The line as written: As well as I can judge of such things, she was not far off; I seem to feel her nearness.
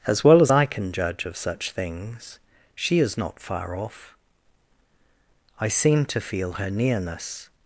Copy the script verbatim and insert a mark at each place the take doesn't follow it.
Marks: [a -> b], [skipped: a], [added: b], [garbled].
As well as I can judge of such things, she [was -> is] not far off; I seem to feel her nearness.